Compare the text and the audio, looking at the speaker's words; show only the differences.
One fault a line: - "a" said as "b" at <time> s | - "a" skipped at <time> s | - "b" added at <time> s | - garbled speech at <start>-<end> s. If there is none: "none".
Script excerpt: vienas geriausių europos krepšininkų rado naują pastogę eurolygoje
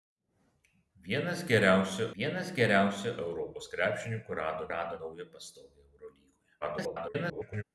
- "vienas geriausių" added at 2.2 s
- "rado" added at 4.7 s
- garbled speech at 6.6-7.6 s